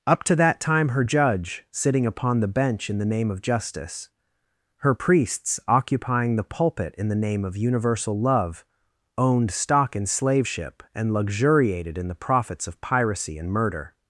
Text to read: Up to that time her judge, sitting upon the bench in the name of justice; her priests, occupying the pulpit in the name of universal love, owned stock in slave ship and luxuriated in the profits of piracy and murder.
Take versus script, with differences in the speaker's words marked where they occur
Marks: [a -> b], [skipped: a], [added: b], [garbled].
Up to that time her judge, sitting upon the bench in the name of justice; her priests, occupying the pulpit in the name of universal love, owned stock in slave ship and luxuriated in the profits of piracy and murder.